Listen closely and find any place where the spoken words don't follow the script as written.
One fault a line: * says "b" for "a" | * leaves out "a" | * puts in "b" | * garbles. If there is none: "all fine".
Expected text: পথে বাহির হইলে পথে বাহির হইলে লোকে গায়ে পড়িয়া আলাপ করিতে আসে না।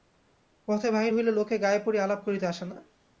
* leaves out "পথে বাহির হইলে"